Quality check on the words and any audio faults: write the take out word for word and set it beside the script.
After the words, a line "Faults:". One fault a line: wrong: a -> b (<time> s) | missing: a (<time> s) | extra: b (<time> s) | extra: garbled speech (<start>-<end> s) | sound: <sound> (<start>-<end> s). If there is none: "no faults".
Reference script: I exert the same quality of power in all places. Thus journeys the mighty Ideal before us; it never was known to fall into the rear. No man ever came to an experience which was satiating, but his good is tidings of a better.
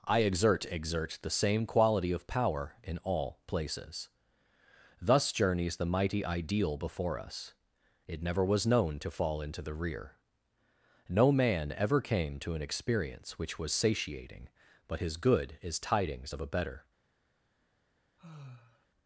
I exert exert the same quality of power in all places. Thus journeys the mighty Ideal before us; it never was known to fall into the rear. No man ever came to an experience which was satiating, but his good is tidings of a better.
Faults:
extra: exert (0.7 s)
sound: sigh (18.2-18.9 s)